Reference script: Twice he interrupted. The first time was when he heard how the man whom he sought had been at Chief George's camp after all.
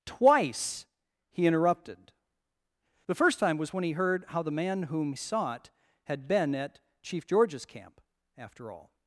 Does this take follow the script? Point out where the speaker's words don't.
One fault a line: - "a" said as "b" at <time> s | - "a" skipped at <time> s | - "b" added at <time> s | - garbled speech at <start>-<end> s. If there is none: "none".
- "he" skipped at 5.1 s